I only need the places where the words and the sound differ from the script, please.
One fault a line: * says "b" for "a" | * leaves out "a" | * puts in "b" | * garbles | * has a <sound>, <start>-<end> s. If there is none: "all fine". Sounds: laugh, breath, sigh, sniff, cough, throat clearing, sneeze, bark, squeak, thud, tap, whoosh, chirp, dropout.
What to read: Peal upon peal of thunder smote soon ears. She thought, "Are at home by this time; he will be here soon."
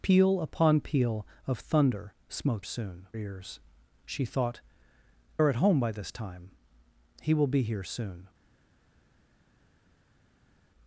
all fine